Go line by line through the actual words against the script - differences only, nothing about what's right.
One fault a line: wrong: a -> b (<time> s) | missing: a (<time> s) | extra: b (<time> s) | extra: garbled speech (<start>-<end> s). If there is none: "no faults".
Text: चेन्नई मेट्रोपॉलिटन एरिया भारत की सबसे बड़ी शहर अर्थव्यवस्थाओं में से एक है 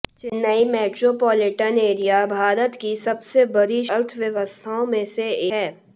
missing: शहर (3.8 s)
missing: एक (5.3 s)